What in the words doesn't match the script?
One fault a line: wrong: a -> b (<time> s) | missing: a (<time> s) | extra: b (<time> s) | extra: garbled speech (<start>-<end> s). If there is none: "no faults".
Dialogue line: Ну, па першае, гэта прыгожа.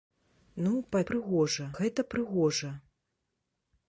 wrong: першае -> прыгожа (1.1 s)